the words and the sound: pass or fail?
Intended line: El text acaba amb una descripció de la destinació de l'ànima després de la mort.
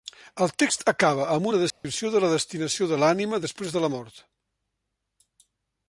fail